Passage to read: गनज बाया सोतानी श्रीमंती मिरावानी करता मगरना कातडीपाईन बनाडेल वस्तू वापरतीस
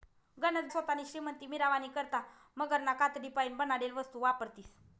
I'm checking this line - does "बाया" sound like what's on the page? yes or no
no